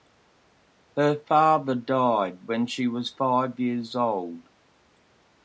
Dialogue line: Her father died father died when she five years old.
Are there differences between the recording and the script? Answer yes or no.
yes